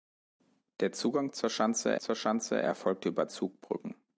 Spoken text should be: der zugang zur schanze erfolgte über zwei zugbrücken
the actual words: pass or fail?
fail